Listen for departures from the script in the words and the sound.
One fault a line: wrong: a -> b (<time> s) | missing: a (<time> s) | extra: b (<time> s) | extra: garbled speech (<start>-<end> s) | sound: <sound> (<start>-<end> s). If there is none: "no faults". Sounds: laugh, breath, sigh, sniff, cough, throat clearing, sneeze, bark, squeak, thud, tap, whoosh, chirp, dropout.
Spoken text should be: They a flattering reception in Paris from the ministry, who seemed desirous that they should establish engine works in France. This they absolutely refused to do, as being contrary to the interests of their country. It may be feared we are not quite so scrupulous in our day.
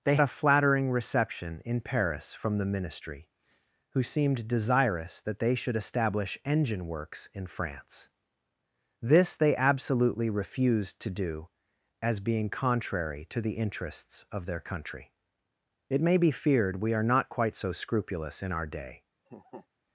sound: laugh (19.3-19.7 s)